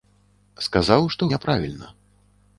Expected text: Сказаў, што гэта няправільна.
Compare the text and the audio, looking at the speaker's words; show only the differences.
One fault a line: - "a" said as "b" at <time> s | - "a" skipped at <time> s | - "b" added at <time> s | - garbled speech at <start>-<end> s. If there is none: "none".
- "гэта" skipped at 1.2 s